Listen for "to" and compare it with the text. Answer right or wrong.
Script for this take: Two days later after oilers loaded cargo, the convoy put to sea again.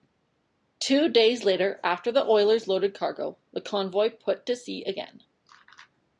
right